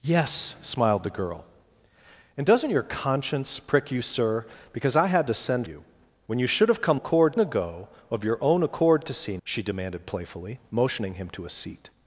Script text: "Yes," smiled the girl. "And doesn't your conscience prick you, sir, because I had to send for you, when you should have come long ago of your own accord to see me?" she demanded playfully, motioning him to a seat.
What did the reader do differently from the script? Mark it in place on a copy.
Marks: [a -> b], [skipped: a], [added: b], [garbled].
"Yes," smiled the girl. "And doesn't your conscience prick you, sir, because I had to send [skipped: for] you, when you should have come [long -> accord] ago of your own accord to see [skipped: me?"] she demanded playfully, motioning him to a seat.